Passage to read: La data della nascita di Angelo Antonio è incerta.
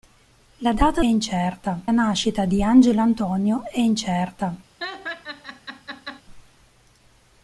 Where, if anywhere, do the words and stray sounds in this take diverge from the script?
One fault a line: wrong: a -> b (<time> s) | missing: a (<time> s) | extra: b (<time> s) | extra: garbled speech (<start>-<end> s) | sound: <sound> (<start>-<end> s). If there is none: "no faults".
wrong: della -> incerta (1.0 s)
sound: laugh (4.8-6.2 s)